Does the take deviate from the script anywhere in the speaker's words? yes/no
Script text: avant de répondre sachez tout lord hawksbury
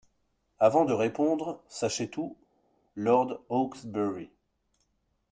no